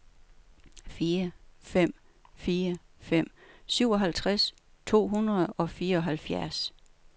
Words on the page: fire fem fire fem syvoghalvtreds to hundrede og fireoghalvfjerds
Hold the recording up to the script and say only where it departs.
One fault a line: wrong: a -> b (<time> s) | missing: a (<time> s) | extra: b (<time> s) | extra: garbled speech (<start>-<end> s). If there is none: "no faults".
no faults